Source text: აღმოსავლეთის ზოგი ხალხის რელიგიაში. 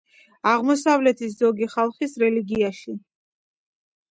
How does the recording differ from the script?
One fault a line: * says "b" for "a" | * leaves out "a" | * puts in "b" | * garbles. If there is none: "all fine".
all fine